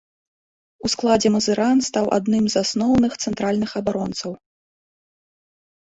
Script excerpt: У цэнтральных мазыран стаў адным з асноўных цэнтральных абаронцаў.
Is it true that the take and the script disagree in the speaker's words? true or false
true